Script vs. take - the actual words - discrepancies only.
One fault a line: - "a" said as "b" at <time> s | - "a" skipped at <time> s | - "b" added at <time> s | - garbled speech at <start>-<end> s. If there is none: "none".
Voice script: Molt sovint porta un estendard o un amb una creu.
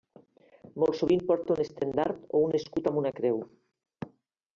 - "escut" added at 2.6 s